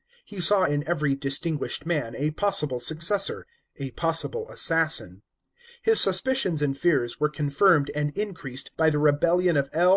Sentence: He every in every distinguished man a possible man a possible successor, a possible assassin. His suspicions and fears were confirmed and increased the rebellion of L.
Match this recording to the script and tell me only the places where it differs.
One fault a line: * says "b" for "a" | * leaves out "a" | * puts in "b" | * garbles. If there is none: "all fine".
* says "saw" for "every"
* leaves out "man a possible"
* puts in "by"